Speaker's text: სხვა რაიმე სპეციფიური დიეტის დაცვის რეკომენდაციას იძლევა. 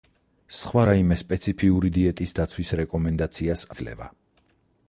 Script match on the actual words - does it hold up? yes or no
yes